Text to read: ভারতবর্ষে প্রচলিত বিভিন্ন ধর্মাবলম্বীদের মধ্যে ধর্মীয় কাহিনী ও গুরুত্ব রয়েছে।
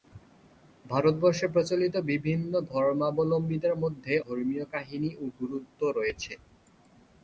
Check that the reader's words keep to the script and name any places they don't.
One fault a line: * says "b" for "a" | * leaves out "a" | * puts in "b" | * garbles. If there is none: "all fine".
all fine